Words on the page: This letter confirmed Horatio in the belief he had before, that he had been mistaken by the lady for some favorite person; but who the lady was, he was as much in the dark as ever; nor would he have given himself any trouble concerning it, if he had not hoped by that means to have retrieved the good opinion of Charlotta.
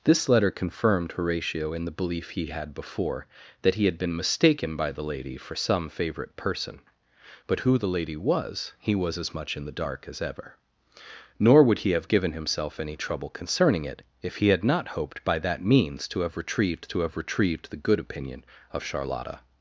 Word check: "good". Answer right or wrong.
right